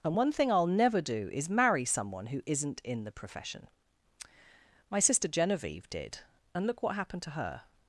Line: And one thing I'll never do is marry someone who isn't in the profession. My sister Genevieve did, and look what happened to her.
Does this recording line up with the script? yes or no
yes